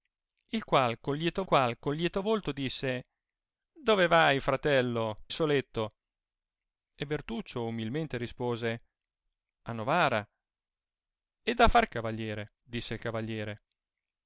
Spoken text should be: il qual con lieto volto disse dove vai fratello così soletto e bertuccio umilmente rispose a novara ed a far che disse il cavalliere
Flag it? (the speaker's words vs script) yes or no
yes